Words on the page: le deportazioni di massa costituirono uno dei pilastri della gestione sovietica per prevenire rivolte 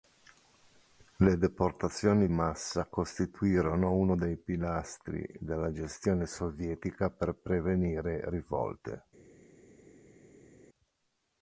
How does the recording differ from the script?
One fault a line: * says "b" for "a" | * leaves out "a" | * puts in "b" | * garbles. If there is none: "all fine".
* leaves out "di"